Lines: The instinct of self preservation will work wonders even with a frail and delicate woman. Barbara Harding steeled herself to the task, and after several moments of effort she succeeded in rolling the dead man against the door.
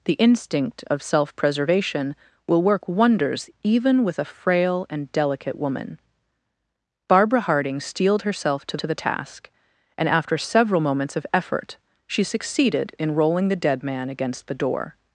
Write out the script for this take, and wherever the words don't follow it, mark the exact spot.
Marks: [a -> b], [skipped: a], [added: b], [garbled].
The instinct of self preservation will work wonders even with a frail and delicate woman. Barbara Harding steeled herself to [added: to] the task, and after several moments of effort she succeeded in rolling the dead man against the door.